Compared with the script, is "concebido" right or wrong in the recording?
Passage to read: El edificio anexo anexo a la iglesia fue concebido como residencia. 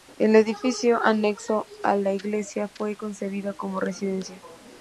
right